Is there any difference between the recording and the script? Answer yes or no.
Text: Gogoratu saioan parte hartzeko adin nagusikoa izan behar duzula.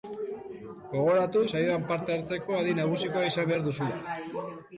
no